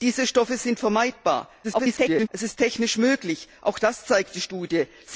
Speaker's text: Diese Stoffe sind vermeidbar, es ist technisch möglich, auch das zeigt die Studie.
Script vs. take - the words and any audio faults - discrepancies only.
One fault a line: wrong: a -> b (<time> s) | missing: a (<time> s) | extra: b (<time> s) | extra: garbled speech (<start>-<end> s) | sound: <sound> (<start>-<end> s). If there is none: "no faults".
extra: garbled speech (1.6-2.3 s)